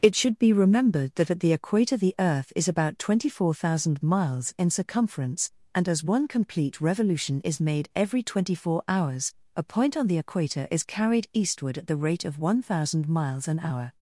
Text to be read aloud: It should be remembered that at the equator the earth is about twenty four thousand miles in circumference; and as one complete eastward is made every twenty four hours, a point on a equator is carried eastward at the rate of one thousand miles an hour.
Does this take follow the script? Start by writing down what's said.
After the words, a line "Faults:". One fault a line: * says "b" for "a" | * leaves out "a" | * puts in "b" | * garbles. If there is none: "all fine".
It should be remembered that at the equator the earth is about twenty four thousand miles in circumference; and as one complete revolution is made every twenty four hours, a point on the equator is carried eastward at the rate of one thousand miles an hour.
Faults:
* says "revolution" for "eastward"
* says "the" for "a"